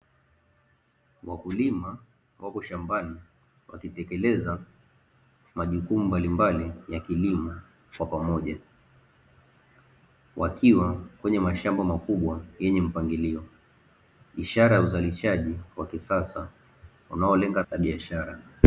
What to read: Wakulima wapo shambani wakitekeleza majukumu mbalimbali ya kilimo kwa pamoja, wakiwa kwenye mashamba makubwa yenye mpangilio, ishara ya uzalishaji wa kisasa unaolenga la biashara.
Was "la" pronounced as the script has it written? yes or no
yes